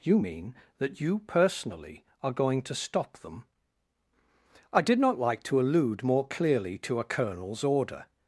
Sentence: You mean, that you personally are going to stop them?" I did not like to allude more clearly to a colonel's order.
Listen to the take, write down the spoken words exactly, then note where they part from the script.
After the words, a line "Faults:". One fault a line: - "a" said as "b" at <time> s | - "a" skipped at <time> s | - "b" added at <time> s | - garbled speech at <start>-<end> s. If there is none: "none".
You mean, that you personally are going to stop them?" I did not like to allude more clearly to a colonel's order.
Faults:
none